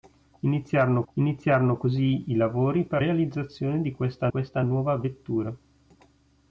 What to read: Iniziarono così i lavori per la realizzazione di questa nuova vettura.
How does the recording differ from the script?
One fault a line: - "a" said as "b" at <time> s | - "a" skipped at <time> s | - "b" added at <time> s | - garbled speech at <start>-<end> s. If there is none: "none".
- "iniziarono" added at 1.1 s
- "la" skipped at 3.0 s
- "questa" added at 4.3 s